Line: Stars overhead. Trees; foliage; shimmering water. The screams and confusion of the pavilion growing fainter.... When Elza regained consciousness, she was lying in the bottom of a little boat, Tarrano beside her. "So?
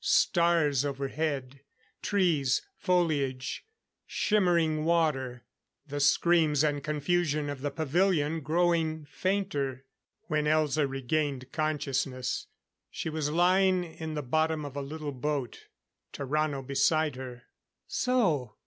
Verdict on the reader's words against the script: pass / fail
pass